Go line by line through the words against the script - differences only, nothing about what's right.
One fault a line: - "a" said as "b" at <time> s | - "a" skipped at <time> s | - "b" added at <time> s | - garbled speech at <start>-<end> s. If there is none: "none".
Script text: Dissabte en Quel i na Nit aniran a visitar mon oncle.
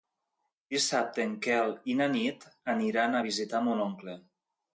none